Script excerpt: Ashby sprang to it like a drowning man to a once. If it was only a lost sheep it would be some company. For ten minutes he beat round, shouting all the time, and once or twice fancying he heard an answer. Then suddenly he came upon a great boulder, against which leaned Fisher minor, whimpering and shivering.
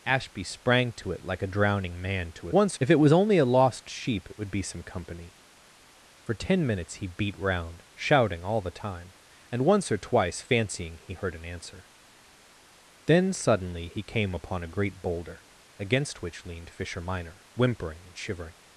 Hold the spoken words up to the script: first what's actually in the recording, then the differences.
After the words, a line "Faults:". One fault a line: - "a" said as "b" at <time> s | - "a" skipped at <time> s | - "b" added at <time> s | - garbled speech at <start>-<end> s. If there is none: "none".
Ashby sprang to it like a drowning man to a once. If it was only a lost sheep it would be some company. For ten minutes he beat round, shouting all the time, and once or twice fancying he heard an answer. Then suddenly he came upon a great boulder, against which leaned Fisher minor, whimpering and shivering.
Faults:
none